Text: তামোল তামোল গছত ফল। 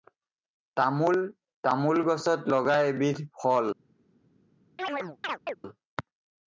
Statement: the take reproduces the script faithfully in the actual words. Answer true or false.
false